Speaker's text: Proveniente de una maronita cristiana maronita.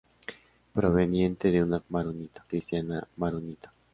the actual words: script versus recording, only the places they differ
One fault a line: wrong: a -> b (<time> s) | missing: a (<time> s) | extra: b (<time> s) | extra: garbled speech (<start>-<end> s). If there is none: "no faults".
no faults